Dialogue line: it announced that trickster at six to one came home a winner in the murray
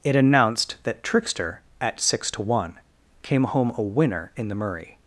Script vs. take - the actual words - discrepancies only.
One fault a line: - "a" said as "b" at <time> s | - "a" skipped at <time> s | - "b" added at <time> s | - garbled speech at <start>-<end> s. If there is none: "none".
none